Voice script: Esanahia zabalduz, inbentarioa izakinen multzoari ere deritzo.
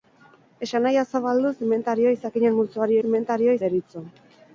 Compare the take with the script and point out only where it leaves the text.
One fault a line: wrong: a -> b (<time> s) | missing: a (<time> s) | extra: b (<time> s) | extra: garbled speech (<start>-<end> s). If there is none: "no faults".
wrong: ere -> inbentarioa (3.1 s)